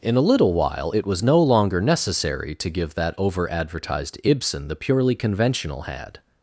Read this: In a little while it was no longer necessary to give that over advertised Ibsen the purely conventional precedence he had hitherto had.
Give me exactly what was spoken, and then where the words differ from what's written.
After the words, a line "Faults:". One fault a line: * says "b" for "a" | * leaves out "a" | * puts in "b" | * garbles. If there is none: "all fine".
In a little while it was no longer necessary to give that over advertised Ibsen the purely conventional had.
Faults:
* leaves out "precedence he had hitherto"